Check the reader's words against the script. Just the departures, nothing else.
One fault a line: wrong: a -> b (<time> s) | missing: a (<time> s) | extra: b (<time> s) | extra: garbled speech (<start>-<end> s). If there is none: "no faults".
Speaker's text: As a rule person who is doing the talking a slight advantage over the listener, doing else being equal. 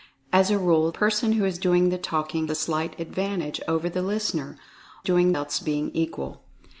no faults